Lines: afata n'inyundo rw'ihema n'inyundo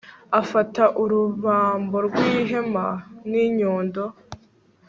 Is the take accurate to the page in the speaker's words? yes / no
no